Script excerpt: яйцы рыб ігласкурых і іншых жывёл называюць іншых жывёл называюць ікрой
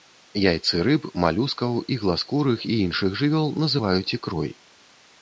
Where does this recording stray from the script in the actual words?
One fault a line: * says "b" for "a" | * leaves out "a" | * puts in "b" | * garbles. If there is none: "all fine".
* puts in "малюскаў"
* leaves out "іншых жывёл называюць"